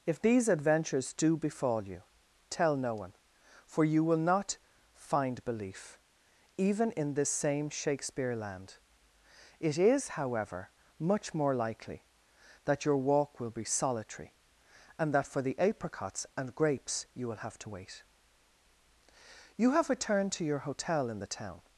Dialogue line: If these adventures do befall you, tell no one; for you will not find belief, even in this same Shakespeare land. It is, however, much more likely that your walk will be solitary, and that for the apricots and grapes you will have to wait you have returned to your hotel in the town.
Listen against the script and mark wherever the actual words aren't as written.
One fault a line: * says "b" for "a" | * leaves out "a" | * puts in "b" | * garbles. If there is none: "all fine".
all fine